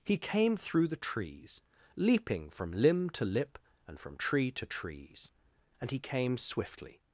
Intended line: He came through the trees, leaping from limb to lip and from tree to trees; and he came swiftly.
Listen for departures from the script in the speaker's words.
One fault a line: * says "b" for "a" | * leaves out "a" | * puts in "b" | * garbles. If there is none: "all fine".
all fine